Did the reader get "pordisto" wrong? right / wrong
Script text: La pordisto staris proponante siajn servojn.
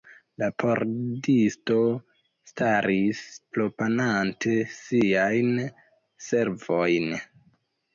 right